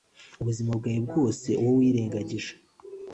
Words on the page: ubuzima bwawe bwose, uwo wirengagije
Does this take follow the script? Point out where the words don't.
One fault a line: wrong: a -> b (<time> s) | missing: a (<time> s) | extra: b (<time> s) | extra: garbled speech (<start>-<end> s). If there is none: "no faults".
no faults